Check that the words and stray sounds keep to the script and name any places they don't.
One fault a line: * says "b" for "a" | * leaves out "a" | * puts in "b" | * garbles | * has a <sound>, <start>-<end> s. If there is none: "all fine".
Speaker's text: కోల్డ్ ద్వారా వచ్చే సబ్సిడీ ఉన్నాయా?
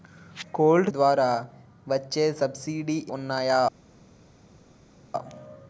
all fine